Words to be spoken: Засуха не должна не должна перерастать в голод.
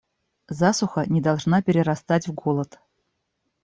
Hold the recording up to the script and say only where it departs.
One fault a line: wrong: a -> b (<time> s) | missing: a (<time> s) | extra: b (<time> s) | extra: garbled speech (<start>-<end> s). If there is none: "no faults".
missing: не должна (1.6 s)